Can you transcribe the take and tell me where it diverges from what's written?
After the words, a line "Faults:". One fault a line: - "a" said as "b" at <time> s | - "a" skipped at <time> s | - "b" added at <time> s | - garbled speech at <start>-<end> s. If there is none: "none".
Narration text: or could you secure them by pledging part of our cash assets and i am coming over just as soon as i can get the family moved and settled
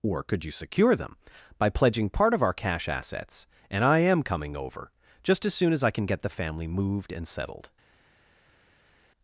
or could you secure them by pledging part of our cash assets and i am coming over just as soon as i can get the family moved and settled
Faults:
none